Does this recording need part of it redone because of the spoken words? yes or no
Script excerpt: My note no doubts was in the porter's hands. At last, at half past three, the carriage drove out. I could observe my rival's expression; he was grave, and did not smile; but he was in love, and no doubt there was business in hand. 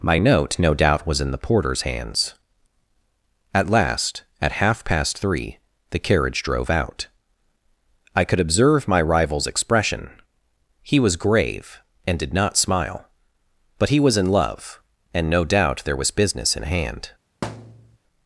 yes